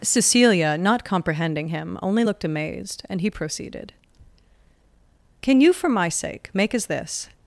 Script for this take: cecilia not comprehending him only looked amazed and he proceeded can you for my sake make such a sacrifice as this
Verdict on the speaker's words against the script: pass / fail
fail